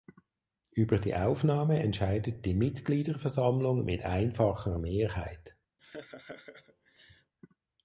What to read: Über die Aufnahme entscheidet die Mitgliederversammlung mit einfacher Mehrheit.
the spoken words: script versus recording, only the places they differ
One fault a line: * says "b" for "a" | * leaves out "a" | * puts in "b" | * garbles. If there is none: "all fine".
all fine